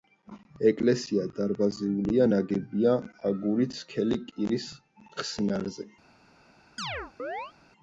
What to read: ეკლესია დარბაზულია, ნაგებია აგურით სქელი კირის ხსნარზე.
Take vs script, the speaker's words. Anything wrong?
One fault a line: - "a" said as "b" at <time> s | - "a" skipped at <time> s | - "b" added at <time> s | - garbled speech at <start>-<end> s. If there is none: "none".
none